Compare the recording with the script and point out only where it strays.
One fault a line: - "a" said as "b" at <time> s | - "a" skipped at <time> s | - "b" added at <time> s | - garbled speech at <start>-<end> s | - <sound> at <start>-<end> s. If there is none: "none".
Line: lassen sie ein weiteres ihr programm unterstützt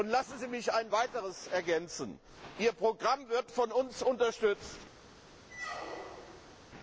- "mich" added at 0.5 s
- "ergänzen" added at 1.5 s
- "wird von uns" added at 3.3 s
- squeak at 5.5-6.6 s